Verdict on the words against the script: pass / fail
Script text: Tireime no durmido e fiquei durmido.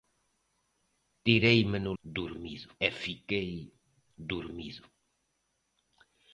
pass